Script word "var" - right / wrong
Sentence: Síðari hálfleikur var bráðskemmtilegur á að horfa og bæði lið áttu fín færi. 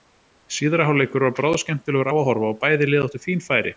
right